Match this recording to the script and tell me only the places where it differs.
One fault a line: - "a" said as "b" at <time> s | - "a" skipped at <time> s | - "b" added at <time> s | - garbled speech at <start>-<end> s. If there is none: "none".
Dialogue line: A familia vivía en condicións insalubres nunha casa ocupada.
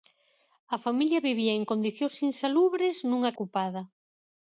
- "casa" skipped at 3.3 s